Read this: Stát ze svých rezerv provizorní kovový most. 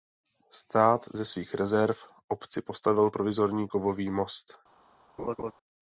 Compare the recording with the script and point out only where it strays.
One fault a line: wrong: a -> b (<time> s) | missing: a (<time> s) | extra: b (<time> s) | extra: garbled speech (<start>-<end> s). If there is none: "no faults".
extra: obci postavil (2.3 s)